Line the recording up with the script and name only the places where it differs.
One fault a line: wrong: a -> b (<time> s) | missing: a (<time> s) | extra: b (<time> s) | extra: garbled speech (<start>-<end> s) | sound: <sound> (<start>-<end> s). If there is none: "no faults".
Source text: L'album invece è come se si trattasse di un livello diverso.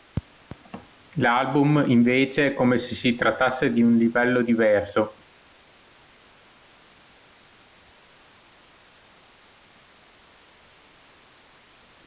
no faults